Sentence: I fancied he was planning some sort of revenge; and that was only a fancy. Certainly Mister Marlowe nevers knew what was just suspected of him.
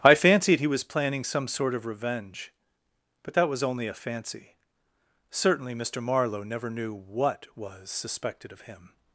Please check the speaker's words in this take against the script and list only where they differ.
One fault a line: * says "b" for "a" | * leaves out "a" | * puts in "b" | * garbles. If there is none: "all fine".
* says "but" for "and"
* says "never" for "nevers"
* leaves out "just"